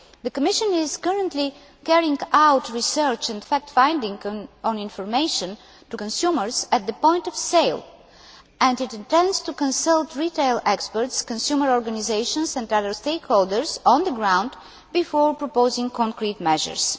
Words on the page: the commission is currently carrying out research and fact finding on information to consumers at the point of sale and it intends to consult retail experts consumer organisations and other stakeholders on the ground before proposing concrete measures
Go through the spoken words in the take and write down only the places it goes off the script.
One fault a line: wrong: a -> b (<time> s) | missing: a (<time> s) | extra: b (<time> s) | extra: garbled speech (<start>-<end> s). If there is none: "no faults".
no faults